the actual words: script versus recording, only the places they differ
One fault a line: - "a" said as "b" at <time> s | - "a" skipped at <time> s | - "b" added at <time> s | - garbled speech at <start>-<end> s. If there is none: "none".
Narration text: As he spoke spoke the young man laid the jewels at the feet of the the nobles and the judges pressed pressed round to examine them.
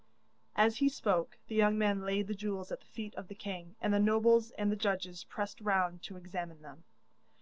- "spoke" skipped at 1.4 s
- "king and" added at 3.4 s
- "pressed" skipped at 5.6 s